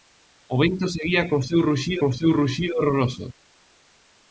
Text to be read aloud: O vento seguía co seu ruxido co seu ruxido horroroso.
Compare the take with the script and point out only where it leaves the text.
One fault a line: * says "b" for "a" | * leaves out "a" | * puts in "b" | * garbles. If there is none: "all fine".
all fine